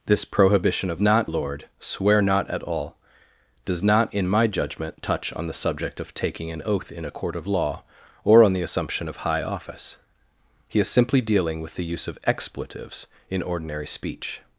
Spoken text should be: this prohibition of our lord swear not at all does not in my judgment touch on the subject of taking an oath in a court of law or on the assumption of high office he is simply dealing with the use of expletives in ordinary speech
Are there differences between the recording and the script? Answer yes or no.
yes